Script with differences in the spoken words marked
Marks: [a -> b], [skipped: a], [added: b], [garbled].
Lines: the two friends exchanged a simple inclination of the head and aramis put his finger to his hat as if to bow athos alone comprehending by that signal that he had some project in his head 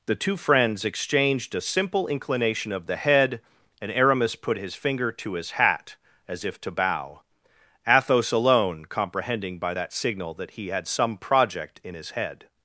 the two friends exchanged a simple inclination of the head and aramis put his finger to his hat as if to bow athos alone comprehending by that signal that he had some project in his head